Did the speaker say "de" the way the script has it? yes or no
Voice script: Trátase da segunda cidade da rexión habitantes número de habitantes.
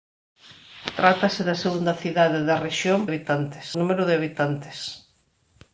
yes